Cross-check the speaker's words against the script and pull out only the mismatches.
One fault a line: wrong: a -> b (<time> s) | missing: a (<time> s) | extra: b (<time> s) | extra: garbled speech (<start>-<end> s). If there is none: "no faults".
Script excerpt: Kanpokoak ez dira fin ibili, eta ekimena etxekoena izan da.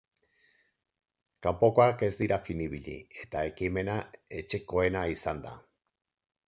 no faults